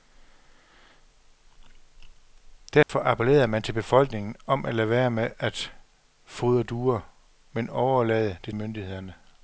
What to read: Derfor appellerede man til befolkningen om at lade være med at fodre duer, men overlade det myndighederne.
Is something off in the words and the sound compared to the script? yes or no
yes